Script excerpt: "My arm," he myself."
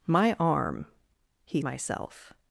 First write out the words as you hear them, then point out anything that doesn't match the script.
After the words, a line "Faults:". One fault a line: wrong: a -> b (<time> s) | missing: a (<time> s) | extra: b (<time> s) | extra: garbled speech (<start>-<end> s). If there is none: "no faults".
"My arm," he myself."
Faults:
no faults